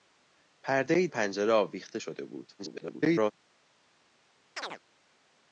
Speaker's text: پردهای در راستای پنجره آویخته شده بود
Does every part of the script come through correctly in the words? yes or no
no